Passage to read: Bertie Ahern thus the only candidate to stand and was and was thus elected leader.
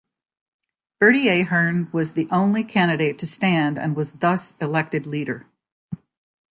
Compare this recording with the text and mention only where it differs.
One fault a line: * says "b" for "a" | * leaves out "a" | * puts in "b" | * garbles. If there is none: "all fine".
* says "was" for "thus"
* leaves out "and was"